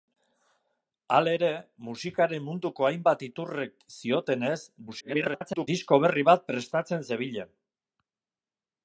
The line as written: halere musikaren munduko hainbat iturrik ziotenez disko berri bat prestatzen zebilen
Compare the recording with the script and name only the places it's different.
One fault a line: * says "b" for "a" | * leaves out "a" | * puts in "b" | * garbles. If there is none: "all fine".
* garbles